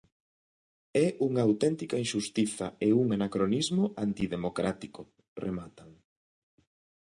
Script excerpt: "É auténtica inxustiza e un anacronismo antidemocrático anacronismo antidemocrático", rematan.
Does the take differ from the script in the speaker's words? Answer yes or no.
yes